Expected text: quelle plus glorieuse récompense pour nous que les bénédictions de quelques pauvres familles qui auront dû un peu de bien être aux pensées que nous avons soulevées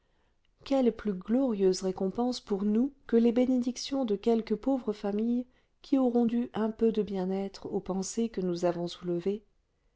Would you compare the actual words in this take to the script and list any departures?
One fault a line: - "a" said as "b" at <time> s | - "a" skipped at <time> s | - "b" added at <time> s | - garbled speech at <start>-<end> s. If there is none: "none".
none